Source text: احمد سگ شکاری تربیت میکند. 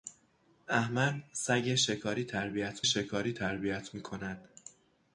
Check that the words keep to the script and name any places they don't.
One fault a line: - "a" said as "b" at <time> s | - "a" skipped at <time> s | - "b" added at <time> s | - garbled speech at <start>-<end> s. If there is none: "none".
- "شکاری تربیت" added at 2.8 s